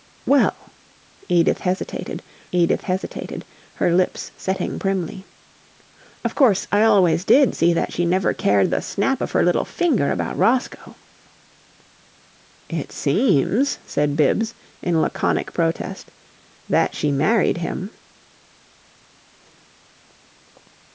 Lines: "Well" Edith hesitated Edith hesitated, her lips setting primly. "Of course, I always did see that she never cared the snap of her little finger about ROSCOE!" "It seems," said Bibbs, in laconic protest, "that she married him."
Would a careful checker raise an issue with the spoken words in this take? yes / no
no